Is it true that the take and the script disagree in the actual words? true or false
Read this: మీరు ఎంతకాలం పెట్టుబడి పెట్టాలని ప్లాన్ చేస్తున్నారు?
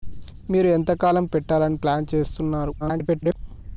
true